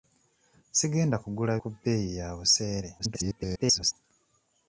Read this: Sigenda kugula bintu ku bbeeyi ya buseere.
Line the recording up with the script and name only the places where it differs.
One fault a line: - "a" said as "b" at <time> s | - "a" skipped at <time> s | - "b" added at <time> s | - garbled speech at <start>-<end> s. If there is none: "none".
- "bintu" skipped at 1.5 s
- garbled speech at 3.0-3.9 s